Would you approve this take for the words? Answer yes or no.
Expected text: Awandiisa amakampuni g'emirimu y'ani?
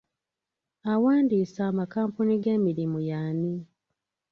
yes